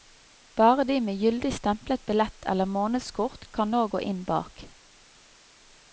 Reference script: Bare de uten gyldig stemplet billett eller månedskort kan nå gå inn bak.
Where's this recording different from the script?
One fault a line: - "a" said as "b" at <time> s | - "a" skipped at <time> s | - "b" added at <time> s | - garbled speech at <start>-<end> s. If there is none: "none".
- "uten" said as "med" at 1.0 s